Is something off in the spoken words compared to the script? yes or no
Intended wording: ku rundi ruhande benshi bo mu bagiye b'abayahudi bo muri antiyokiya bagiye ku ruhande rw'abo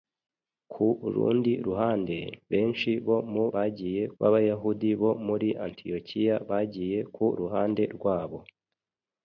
no